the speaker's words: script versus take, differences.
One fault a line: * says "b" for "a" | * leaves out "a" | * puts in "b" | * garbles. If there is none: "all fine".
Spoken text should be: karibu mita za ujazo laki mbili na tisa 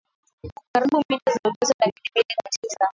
all fine